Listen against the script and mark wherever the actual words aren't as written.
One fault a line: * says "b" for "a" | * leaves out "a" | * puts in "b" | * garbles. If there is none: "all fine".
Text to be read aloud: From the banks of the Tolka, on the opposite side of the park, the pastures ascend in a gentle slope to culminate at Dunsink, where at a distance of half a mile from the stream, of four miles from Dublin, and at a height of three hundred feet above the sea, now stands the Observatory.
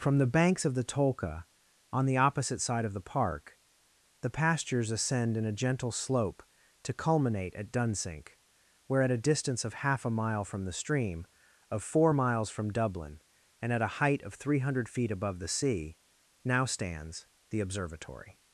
all fine